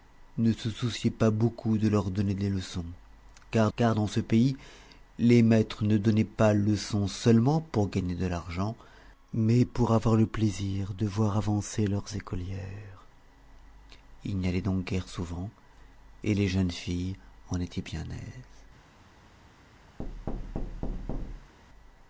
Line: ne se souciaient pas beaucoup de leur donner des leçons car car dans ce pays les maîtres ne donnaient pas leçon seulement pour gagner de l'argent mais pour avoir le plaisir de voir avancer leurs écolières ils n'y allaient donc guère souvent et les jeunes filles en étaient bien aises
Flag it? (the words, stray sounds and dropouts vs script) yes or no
yes